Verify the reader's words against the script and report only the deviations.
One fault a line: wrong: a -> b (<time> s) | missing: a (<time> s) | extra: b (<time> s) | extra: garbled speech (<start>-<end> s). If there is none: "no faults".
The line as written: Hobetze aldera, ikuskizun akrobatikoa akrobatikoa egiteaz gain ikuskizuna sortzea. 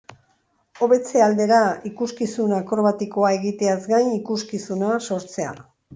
missing: akrobatikoa (3.3 s)